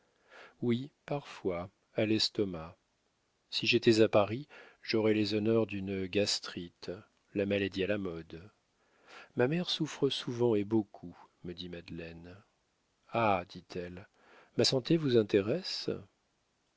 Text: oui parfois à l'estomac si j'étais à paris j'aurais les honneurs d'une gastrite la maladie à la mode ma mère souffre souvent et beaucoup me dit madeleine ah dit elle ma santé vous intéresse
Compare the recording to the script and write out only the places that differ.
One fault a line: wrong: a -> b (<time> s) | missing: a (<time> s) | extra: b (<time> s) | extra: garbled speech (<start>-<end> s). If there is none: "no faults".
no faults